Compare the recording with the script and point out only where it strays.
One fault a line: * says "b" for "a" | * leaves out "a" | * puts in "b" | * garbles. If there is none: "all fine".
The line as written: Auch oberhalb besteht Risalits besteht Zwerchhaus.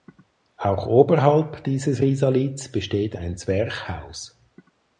* says "dieses" for "besteht"
* puts in "ein"